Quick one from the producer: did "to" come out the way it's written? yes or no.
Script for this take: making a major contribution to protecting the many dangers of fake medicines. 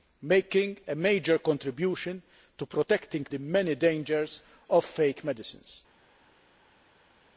yes